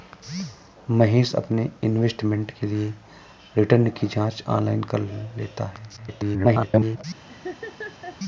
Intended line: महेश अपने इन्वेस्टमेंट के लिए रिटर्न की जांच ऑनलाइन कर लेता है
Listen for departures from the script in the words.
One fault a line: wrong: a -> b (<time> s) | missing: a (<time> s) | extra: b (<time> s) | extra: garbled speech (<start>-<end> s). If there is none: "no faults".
extra: garbled speech (6.0-7.0 s)